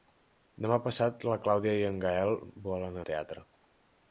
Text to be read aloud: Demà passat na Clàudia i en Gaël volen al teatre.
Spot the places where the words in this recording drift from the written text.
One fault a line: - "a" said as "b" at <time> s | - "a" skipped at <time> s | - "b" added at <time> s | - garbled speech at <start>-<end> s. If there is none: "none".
none